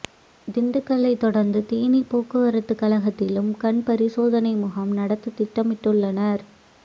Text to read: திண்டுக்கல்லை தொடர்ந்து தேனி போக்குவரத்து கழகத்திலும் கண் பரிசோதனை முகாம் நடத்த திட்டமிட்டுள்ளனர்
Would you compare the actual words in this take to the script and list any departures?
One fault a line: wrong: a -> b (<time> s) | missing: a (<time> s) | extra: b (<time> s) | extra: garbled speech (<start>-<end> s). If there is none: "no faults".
no faults